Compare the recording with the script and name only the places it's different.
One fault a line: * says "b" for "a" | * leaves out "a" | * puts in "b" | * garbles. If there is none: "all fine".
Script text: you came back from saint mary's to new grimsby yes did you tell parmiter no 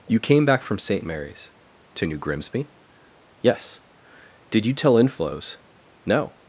* says "inflows" for "parmiter"